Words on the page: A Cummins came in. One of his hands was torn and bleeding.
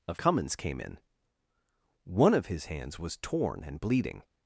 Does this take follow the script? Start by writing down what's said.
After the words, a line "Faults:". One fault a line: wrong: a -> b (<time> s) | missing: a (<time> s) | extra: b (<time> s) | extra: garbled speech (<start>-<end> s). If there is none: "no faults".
A Cummins came in. One of his hands was torn and bleeding.
Faults:
no faults